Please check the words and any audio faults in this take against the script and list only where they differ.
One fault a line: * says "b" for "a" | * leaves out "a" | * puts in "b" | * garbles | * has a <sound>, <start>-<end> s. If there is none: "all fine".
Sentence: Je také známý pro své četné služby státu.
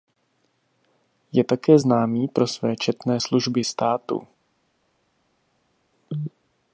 all fine